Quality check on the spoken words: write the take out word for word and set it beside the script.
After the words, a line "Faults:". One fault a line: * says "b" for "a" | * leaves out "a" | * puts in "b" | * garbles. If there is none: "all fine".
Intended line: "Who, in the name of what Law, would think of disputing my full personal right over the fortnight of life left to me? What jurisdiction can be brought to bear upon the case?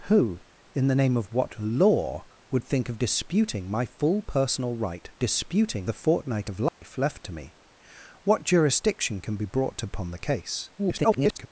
"Who, in the name of what Law, would think of disputing my full personal right disputing the fortnight of life left to me? What jurisdiction can be brought to upon the case? [garbled]
Faults:
* says "disputing" for "over"
* leaves out "bear"
* garbles